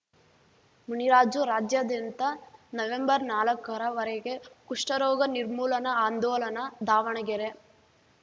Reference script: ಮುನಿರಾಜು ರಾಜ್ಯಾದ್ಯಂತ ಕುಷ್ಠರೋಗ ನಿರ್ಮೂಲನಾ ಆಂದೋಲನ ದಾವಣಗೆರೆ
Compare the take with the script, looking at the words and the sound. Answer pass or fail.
fail